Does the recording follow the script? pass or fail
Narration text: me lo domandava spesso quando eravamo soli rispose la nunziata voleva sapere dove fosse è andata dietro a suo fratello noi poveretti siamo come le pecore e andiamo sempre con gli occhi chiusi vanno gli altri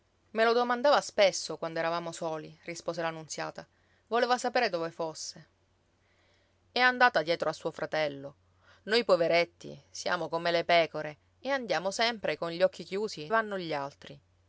pass